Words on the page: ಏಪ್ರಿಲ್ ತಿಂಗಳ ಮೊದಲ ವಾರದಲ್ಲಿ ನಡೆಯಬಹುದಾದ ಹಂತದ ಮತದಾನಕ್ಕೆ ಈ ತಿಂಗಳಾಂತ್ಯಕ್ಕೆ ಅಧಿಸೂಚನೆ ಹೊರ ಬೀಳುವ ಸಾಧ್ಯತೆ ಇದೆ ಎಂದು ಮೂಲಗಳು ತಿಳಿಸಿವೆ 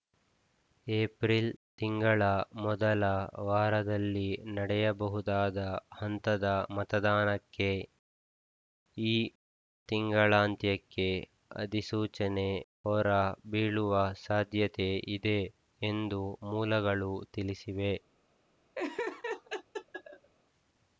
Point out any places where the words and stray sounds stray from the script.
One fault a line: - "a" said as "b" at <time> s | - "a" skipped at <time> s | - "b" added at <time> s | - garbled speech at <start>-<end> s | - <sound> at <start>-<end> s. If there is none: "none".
- laugh at 18.7-20.3 s